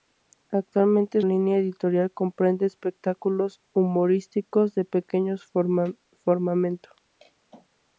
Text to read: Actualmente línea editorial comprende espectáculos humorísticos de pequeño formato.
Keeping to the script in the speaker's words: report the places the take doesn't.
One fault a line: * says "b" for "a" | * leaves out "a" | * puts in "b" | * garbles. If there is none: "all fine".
all fine